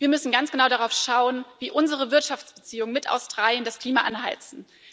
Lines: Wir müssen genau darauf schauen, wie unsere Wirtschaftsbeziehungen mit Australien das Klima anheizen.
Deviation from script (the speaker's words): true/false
true